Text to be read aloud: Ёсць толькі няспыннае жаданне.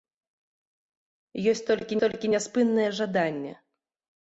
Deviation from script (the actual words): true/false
true